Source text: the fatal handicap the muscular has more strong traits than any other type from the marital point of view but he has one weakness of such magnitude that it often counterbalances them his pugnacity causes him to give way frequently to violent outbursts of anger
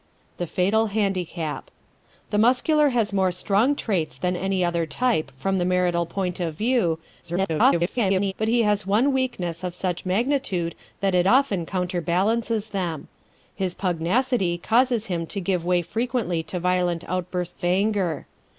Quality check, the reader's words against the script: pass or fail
fail